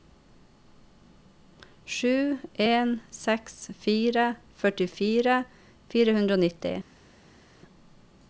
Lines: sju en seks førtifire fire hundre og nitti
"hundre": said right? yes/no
yes